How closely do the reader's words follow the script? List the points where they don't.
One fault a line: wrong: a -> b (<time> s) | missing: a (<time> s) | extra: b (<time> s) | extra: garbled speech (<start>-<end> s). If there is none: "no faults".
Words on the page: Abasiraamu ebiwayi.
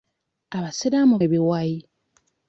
no faults